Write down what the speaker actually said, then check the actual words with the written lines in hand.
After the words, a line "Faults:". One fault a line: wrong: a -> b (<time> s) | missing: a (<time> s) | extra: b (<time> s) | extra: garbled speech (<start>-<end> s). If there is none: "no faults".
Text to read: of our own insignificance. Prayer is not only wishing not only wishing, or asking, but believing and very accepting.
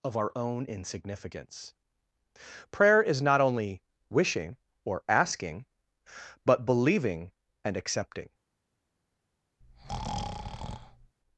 of our own insignificance. Prayer is not only wishing, or asking, but believing and accepting.
Faults:
missing: not only wishing (4.6 s)
missing: very (7.7 s)